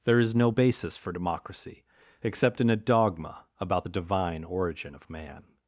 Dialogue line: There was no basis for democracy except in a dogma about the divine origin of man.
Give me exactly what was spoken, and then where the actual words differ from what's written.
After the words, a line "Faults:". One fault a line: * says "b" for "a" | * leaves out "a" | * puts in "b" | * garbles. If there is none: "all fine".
There is no basis for democracy except in a dogma about the divine origin of man.
Faults:
* says "is" for "was"